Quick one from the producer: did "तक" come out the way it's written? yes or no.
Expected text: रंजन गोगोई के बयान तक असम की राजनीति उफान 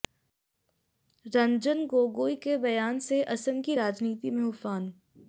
no